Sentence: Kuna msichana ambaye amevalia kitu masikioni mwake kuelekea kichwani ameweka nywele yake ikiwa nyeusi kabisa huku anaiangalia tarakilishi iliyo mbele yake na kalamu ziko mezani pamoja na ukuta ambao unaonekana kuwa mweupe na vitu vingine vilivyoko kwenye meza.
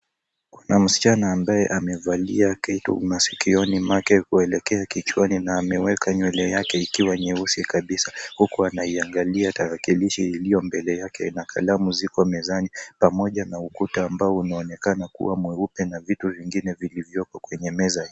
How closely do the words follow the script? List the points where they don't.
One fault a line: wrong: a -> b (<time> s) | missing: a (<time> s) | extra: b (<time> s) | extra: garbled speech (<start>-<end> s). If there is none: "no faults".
extra: na (5.4 s)